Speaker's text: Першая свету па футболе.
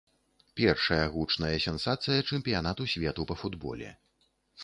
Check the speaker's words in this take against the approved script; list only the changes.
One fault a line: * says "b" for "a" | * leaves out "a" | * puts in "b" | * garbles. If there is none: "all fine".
* puts in "гучная сенсацыя чэмпіянату"